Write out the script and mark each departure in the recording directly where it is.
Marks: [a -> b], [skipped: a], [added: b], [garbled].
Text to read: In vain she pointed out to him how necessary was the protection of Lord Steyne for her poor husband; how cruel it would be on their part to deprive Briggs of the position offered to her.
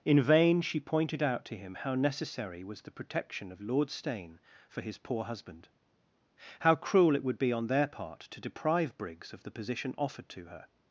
In vain she pointed out to him how necessary was the protection of Lord Steyne for [her -> his] poor husband; how cruel it would be on their part to deprive Briggs of the position offered to her.